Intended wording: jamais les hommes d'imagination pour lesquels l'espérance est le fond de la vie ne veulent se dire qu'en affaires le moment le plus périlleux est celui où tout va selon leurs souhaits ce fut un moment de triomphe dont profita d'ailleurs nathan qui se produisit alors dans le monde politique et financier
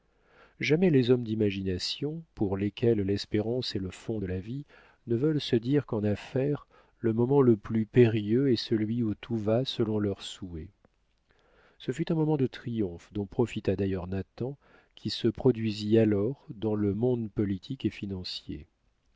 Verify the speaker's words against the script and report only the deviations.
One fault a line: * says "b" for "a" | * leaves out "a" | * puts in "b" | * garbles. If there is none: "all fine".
all fine